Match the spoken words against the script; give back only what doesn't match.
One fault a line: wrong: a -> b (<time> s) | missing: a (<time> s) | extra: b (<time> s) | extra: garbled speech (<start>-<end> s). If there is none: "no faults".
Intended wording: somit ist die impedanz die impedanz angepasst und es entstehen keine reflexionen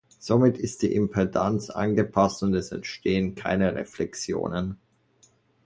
missing: die impedanz (1.7 s)